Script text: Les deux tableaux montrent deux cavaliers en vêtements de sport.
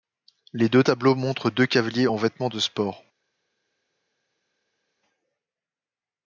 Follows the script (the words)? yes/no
yes